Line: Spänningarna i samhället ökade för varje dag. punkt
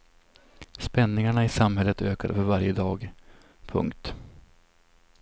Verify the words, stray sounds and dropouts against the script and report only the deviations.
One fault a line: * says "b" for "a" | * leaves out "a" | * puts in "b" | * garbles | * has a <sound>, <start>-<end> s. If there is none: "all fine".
all fine